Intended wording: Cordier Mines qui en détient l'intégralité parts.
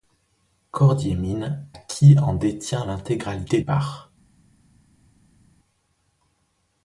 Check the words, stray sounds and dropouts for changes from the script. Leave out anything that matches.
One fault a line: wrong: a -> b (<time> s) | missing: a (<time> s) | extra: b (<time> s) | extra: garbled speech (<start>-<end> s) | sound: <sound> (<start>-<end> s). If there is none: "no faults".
no faults